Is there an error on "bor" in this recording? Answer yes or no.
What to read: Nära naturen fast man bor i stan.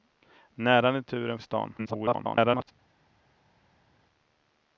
yes